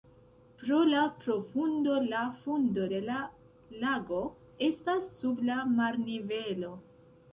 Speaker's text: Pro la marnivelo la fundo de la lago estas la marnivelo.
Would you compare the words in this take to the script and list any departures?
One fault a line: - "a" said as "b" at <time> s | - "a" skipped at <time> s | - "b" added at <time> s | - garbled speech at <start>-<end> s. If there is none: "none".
- "marnivelo" said as "profundo" at 1.2 s
- "sub" added at 5.2 s